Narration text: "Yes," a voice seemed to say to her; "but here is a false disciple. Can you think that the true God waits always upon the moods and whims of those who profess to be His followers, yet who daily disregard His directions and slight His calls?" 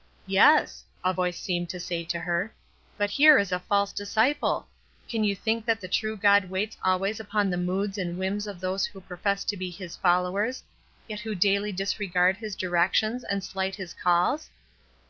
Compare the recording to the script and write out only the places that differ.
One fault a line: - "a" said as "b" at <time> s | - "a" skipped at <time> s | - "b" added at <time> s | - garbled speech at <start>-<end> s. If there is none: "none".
none